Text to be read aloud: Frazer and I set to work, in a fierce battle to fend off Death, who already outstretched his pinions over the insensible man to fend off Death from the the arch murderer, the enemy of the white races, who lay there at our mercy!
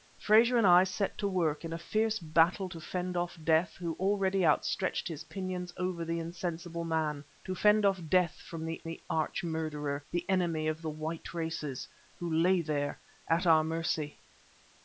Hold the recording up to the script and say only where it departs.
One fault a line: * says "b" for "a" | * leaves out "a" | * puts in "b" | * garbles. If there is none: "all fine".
all fine